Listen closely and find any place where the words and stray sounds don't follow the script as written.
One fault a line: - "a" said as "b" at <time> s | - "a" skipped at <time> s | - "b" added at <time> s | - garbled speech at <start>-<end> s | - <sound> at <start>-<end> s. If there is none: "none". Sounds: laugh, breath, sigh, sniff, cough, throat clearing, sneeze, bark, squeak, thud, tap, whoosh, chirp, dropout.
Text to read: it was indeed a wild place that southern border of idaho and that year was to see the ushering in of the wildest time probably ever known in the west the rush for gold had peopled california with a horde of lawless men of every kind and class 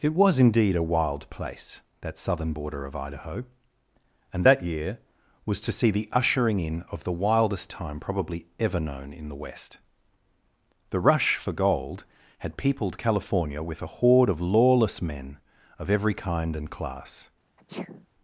- sneeze at 17.6-18.1 s